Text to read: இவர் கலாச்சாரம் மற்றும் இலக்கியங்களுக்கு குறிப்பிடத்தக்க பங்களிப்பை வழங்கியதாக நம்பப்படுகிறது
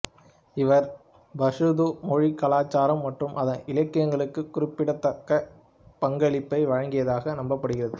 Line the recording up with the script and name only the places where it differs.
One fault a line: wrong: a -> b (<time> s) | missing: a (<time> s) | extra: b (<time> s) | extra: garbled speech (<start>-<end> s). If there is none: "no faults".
extra: பஷ்தூ மொழி (1.3 s)
extra: அதன் (3.4 s)